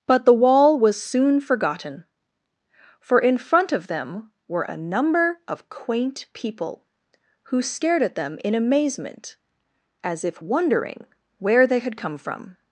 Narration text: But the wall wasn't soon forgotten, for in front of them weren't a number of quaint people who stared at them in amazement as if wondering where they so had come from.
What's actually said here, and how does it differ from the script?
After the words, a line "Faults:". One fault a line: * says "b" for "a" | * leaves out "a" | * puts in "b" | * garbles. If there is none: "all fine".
But the wall was soon forgotten, for in front of them were a number of quaint people who stared at them in amazement as if wondering where they had come from.
Faults:
* says "was" for "wasn't"
* says "were" for "weren't"
* leaves out "so"